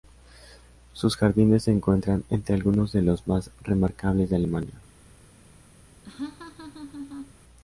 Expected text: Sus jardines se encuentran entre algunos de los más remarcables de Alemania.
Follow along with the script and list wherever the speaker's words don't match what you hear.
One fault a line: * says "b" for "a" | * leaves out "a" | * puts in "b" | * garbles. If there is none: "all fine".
all fine